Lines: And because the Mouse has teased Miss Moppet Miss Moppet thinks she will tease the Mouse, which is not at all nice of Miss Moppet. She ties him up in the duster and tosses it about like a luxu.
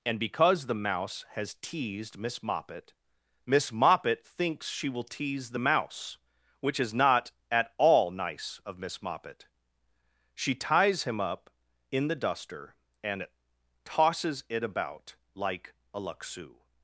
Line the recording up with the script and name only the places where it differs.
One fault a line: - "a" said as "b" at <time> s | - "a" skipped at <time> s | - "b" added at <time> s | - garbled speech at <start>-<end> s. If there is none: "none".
none